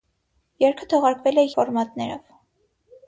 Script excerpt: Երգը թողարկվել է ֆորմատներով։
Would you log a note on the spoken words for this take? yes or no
no